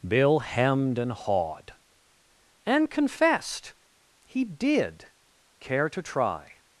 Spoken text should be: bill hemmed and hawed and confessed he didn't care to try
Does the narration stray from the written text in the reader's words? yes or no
yes